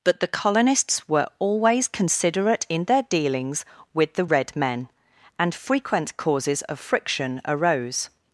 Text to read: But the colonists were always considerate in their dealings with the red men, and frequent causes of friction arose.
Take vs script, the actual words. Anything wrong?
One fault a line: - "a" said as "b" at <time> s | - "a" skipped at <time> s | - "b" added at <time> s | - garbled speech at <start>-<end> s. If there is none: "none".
none